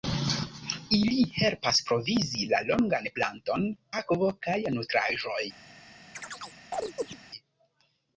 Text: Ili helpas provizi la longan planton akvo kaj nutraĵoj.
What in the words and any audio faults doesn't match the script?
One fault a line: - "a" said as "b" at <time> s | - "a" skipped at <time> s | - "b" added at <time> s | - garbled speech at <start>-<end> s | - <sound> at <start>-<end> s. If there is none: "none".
- chirp at 6.1-7.2 s